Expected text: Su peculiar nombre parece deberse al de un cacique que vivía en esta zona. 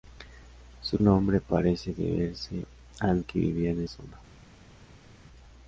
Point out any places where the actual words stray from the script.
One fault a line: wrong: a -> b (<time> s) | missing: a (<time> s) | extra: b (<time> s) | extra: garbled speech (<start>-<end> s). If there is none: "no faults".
missing: peculiar (1.0 s)
missing: de un cacique (3.2 s)
missing: esta (3.8 s)